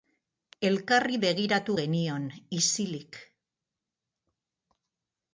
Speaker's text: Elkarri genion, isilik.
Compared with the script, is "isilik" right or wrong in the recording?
right